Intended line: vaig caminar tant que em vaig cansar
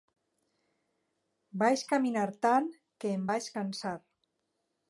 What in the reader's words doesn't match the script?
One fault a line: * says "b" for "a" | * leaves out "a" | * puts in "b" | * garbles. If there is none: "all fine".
all fine